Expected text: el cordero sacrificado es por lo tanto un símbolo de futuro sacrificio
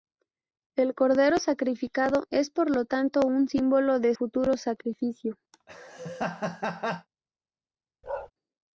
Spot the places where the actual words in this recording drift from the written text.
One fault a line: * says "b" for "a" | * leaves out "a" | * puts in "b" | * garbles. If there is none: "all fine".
all fine